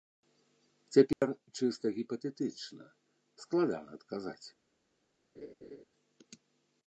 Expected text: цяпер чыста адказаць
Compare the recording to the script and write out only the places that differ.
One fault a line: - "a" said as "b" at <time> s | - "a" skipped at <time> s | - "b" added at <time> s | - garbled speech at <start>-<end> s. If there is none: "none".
- "гіпатэтычна складана" added at 2.0 s